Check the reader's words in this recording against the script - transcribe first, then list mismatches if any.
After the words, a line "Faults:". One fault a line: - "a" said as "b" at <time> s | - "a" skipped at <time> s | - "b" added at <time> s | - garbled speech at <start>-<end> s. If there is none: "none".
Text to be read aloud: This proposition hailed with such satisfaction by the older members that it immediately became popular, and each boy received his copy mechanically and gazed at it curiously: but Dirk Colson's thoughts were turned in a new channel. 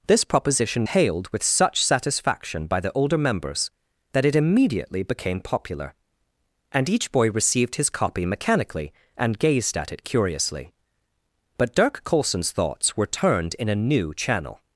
This proposition hailed with such satisfaction by the older members that it immediately became popular, and each boy received his copy mechanically and gazed at it curiously: but Dirk Colson's thoughts were turned in a new channel.
Faults:
none